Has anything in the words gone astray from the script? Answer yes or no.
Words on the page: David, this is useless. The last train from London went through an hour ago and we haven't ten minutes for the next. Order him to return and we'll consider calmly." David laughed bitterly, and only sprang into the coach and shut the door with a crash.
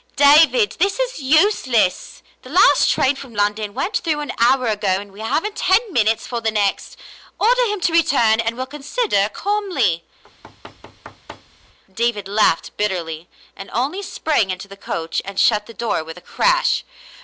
no